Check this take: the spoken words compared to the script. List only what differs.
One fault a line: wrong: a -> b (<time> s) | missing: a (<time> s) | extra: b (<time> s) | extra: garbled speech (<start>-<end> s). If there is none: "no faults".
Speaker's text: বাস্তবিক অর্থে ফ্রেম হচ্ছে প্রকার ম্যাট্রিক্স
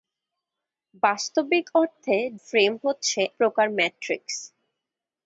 no faults